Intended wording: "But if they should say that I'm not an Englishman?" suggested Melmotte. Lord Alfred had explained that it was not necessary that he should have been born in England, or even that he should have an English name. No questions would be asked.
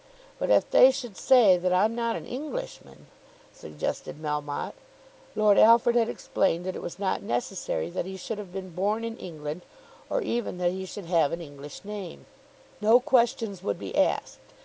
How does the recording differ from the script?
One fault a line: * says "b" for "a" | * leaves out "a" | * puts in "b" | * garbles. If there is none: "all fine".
all fine